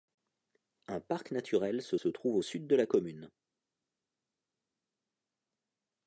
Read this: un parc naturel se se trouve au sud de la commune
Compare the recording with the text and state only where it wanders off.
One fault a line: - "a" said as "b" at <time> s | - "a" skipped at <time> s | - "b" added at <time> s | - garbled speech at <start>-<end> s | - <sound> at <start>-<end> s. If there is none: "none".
none